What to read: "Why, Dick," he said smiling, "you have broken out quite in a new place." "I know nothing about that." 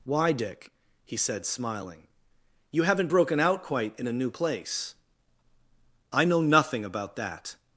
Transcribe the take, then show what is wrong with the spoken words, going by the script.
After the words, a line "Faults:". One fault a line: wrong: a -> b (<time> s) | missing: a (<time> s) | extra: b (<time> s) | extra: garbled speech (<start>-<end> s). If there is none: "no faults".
"Why, Dick," he said smiling, "you haven't broken out quite in a new place." "I know nothing about that."
Faults:
wrong: have -> haven't (2.8 s)